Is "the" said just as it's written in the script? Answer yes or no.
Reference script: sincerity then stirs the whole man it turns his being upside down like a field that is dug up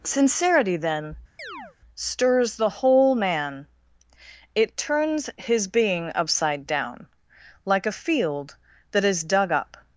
yes